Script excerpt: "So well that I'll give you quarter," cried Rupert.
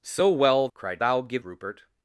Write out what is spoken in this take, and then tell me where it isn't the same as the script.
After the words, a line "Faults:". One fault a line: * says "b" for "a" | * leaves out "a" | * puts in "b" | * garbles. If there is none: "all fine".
"So well cried I'll give Rupert.
Faults:
* says "cried" for "that"
* leaves out "you quarter cried"